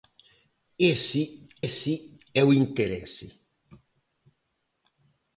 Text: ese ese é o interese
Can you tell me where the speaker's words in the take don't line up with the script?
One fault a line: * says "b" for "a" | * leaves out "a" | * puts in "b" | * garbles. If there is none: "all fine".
all fine